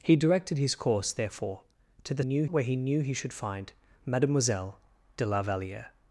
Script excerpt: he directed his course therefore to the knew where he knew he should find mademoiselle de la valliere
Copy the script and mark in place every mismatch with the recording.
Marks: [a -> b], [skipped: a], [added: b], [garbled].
he directed his course therefore to the knew where he knew he should find mademoiselle de la valliere